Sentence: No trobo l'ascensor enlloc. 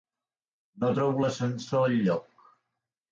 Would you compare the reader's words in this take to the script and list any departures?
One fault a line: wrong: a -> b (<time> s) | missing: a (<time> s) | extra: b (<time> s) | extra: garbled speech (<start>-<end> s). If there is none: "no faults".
no faults